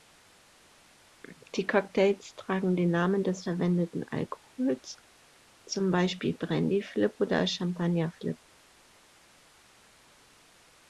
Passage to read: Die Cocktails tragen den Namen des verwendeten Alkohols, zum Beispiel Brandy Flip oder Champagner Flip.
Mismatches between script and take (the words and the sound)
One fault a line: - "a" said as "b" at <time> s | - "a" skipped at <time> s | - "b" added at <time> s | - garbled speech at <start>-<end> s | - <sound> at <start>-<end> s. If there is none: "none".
none